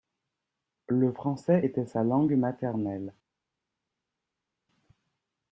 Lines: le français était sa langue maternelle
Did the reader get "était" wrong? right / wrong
right